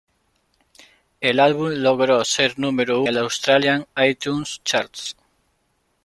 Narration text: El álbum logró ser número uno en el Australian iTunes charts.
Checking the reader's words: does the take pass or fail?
fail